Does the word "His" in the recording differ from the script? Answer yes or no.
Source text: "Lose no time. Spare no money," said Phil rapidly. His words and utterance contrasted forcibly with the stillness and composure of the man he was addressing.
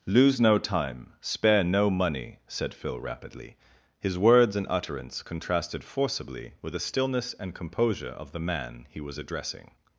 no